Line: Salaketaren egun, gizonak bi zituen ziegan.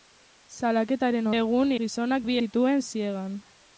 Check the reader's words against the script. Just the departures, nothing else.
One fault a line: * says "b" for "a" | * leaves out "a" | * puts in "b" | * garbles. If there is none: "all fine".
all fine